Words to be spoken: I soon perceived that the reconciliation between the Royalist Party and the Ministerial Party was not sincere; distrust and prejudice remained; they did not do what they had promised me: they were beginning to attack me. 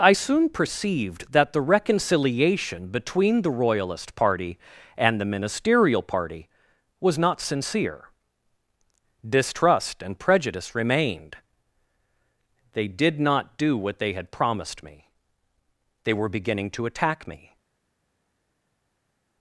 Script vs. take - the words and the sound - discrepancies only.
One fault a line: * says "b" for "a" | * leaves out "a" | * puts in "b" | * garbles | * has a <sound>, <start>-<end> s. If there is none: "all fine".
all fine